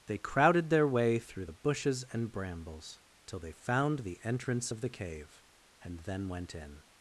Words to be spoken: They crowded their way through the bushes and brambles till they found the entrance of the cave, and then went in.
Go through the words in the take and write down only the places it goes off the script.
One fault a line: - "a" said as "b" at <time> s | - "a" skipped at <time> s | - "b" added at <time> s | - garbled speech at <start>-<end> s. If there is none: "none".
none